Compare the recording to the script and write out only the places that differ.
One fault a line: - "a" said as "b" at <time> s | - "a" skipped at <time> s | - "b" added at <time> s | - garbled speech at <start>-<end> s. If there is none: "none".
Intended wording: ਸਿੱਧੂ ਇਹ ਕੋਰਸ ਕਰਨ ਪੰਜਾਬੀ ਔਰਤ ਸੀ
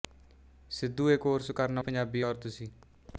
none